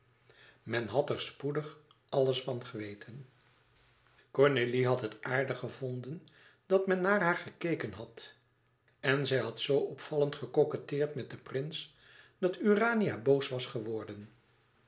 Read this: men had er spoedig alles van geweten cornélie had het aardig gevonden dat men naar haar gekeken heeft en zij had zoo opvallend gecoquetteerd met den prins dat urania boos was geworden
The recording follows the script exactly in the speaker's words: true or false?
false